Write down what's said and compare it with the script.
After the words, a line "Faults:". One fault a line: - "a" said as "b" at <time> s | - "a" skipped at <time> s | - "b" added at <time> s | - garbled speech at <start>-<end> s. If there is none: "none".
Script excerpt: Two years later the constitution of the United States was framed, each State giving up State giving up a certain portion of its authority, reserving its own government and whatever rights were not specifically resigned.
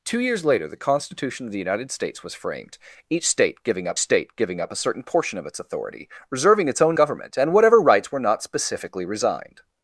Two years later the constitution of the United States was framed, each State giving up State giving up a certain portion of its authority, reserving its own government and whatever rights were not specifically resigned.
Faults:
none